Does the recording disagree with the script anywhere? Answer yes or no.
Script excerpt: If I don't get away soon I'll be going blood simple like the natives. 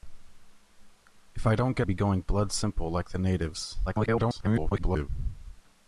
yes